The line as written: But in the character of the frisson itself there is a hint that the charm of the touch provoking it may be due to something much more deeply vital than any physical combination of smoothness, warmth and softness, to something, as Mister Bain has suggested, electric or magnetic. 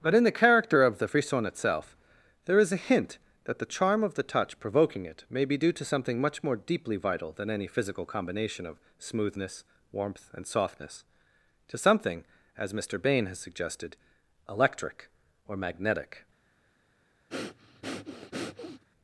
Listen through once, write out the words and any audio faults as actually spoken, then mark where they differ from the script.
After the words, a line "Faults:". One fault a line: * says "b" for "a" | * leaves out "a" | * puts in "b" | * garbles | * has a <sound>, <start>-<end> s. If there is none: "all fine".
But in the character of the frisson itself there is a hint that the charm of the touch provoking it may be due to something much more deeply vital than any physical combination of smoothness, warmth and softness, to something, as Mister Bain has suggested, electric or magnetic.
Faults:
* has a breath, 17.3-18.8 s